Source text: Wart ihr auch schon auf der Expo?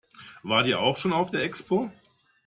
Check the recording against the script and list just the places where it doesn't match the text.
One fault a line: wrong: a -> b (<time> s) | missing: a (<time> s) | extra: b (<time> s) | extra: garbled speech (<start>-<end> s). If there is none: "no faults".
no faults